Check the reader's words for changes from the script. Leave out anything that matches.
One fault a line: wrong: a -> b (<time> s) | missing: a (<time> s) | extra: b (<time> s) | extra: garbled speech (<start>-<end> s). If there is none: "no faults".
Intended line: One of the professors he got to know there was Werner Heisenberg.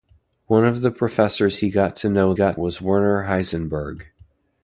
wrong: there -> got (2.3 s)